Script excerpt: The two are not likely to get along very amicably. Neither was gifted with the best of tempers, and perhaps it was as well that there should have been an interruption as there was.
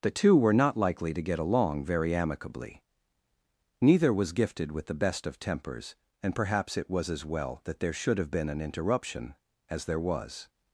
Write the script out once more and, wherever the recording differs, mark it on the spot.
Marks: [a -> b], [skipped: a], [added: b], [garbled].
The two [are -> were] not likely to get along very amicably. Neither was gifted with the best of tempers, and perhaps it was as well that there should have been an interruption as there was.